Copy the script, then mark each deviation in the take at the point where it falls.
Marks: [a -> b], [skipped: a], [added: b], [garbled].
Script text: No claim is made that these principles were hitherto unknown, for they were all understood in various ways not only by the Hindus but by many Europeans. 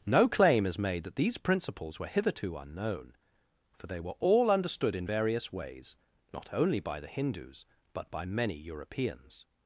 No claim is made that these principles were hitherto unknown, for they were all understood in various ways not only by the Hindus but by many Europeans.